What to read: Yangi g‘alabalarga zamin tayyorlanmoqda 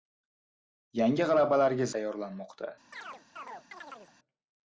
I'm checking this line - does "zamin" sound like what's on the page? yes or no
no